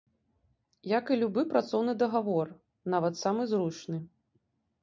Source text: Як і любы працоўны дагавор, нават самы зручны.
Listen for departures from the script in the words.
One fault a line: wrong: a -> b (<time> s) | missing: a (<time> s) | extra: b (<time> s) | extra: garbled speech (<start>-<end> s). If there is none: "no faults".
no faults